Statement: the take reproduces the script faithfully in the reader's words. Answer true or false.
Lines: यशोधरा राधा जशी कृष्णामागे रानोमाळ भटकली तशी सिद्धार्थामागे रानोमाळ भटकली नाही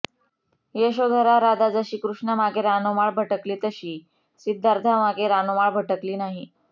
true